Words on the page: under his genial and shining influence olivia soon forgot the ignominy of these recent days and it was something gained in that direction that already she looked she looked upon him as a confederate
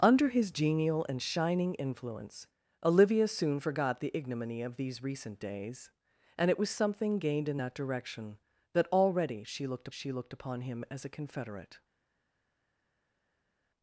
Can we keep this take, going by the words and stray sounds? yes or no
yes